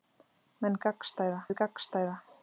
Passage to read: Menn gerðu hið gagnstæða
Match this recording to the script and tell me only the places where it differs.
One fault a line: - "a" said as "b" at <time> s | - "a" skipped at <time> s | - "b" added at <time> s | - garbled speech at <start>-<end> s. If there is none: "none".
- "gerðu" said as "gagnstæða" at 0.9 s